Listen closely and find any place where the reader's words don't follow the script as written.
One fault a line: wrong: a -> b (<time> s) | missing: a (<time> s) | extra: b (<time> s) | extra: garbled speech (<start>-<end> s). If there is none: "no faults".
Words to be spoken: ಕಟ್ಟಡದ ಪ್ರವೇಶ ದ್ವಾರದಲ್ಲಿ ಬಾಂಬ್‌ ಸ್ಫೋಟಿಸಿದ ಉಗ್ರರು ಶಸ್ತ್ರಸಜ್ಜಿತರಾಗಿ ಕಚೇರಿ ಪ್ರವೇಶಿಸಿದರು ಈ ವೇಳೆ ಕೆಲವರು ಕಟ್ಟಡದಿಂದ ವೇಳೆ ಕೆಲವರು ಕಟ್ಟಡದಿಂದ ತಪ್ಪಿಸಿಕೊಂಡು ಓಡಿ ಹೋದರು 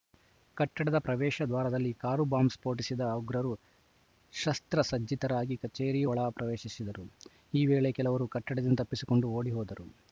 extra: ಕಾರು (1.9 s)
extra: ಒಳ (6.0 s)
missing: ವೇಳೆ ಕೆಲವರು ಕಟ್ಟಡದಿಂದ (8.8 s)